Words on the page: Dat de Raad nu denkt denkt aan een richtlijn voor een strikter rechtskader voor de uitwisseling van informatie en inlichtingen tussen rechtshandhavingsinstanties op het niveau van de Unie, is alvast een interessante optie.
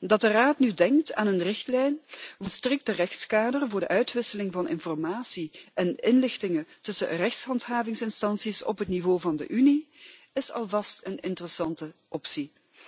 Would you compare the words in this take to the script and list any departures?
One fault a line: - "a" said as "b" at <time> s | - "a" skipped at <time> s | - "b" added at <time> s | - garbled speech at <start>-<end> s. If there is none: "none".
- "denkt" skipped at 1.1 s